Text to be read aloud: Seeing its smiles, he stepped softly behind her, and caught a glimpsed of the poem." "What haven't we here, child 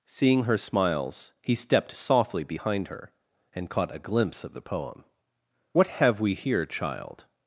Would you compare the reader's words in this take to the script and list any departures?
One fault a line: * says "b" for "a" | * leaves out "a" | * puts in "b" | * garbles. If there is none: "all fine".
* says "her" for "its"
* says "glimpse" for "glimpsed"
* says "have" for "haven't"